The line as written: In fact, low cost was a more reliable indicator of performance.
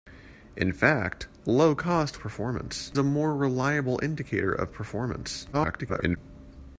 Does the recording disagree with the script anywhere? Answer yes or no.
yes